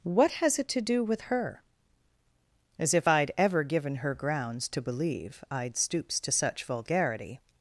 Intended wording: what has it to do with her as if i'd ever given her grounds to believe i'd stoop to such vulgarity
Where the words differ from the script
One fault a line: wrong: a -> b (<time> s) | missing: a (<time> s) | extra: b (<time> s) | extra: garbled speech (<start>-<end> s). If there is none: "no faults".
wrong: stoop -> stoops (5.8 s)